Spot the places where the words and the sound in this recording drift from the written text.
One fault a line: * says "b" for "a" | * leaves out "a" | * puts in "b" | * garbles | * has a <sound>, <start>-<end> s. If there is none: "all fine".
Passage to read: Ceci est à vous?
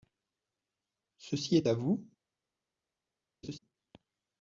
* has a laugh, 3.4-3.6 s